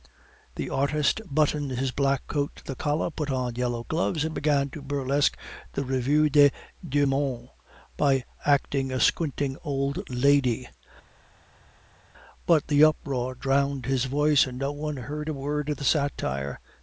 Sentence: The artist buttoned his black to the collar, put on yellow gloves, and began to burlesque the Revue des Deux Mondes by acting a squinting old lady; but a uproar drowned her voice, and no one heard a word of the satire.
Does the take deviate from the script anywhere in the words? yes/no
yes